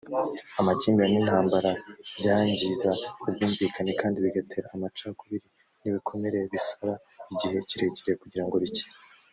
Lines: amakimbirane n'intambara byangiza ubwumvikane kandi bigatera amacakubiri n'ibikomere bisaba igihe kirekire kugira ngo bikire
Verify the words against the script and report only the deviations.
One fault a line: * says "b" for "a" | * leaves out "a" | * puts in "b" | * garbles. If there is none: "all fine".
all fine